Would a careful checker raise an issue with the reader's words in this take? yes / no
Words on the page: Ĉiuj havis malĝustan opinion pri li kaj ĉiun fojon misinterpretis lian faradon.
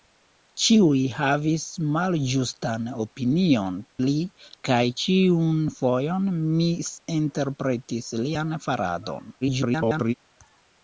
yes